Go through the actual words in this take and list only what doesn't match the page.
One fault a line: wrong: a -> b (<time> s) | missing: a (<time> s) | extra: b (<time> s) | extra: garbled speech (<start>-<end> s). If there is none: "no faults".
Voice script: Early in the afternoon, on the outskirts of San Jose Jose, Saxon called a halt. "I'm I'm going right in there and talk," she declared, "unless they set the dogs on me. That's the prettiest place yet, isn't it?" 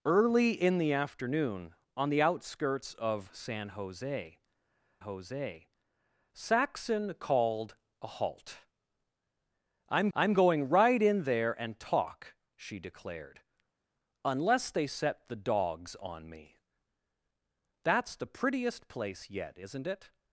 no faults